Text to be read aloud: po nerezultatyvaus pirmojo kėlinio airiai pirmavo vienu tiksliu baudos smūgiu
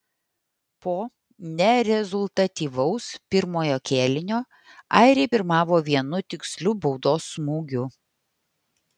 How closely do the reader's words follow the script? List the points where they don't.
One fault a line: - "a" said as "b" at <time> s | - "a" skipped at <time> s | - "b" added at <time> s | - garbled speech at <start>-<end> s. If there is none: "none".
none